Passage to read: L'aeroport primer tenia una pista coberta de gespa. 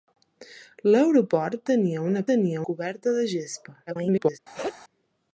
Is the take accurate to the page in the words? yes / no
no